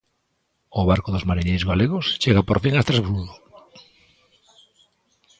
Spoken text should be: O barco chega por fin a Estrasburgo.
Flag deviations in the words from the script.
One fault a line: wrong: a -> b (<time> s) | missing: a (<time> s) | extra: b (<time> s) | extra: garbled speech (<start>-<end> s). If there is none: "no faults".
extra: dos mariñeiros galegos (1.1 s)